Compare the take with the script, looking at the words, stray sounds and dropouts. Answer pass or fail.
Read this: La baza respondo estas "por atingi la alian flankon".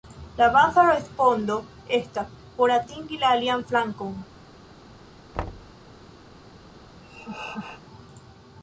fail